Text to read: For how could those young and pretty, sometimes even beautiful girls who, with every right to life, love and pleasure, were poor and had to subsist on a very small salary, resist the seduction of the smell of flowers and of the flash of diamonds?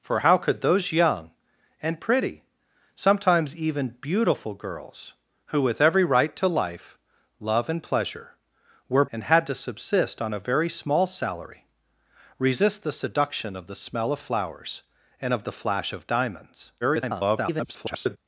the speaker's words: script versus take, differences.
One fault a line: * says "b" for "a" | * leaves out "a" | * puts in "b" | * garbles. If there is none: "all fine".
* leaves out "poor"
* garbles